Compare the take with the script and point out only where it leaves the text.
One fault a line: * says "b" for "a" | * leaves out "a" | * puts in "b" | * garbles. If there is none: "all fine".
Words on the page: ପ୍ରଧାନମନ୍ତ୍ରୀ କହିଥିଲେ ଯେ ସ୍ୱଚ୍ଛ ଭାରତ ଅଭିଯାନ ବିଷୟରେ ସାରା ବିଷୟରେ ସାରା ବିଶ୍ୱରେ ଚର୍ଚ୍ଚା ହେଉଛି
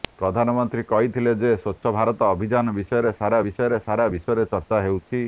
all fine